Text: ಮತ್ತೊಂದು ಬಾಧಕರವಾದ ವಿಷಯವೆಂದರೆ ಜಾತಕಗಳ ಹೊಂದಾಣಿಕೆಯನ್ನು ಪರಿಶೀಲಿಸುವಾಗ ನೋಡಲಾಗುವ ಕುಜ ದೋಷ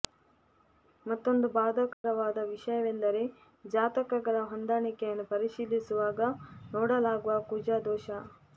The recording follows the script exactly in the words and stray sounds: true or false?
false